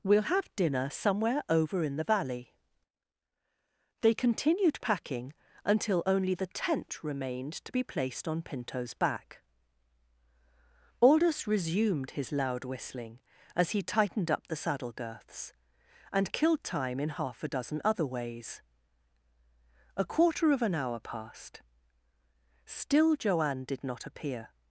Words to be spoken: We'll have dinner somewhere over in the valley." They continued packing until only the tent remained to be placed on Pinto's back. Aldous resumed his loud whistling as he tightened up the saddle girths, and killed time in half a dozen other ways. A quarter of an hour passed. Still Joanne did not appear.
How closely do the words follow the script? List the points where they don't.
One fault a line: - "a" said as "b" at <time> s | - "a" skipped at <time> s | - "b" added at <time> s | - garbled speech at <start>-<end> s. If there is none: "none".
none